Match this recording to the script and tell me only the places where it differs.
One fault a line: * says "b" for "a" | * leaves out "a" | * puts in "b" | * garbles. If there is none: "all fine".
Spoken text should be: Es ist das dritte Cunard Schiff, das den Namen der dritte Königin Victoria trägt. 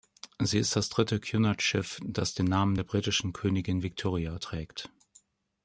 * says "Sie" for "Es"
* says "britischen" for "dritte"